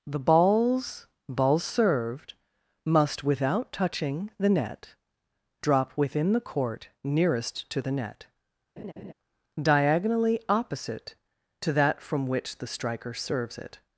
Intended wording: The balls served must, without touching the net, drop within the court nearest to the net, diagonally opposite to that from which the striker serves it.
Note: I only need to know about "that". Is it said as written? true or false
true